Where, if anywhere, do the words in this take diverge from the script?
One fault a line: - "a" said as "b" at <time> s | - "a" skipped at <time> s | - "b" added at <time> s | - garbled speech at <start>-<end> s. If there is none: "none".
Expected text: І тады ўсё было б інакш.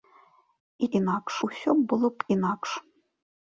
- "тады" said as "інакш" at 1.0 s